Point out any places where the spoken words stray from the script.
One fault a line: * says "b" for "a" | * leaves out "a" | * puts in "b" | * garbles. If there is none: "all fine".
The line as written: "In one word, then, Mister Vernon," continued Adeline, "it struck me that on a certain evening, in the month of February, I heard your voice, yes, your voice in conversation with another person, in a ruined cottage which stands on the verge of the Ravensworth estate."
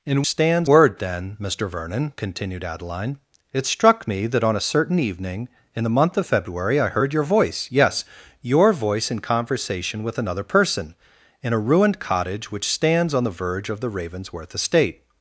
* says "stands" for "one"